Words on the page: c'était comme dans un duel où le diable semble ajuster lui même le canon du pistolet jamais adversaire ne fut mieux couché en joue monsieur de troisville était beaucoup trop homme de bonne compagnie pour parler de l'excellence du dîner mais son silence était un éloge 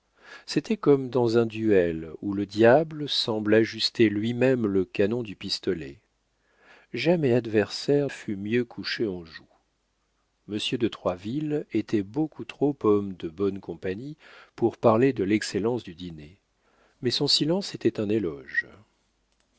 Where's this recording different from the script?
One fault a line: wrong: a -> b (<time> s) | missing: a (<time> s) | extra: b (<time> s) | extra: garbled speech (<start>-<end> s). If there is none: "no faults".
missing: ne (8.1 s)